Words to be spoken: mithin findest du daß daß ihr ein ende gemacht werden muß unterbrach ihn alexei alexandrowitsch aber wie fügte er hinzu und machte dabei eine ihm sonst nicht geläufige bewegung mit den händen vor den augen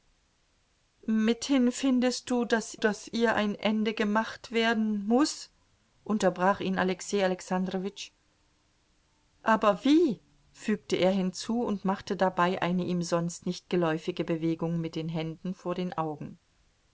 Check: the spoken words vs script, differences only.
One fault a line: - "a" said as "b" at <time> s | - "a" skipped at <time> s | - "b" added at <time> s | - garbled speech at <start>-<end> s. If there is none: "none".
none